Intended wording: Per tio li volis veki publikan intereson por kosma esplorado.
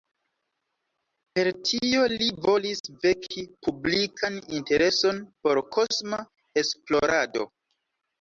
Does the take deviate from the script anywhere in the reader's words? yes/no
no